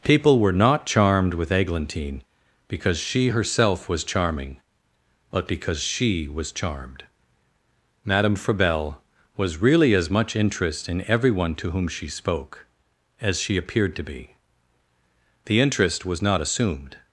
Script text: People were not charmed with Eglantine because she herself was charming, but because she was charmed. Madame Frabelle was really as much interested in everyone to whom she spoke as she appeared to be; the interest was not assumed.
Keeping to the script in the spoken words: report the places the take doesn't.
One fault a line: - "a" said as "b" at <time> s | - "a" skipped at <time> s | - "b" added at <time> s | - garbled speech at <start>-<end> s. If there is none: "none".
- "interested" said as "interest" at 10.3 s